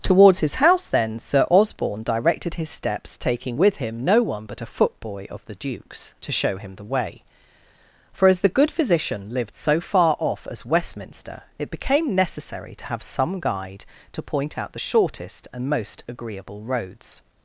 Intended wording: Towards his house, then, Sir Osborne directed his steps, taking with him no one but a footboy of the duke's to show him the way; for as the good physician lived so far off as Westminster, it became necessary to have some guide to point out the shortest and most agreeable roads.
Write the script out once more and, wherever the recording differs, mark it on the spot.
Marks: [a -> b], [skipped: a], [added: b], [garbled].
Towards his house, then, Sir Osborne directed his steps, taking with him no one but a footboy of the duke's to show him the way; for as the good physician lived so far off as Westminster, it became necessary to have some guide to point out the shortest and most agreeable roads.